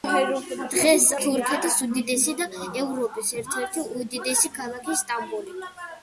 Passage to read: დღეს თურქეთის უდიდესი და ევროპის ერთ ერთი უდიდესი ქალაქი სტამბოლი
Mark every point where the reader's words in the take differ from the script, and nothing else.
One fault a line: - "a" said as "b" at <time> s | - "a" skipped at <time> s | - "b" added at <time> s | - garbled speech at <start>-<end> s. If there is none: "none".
none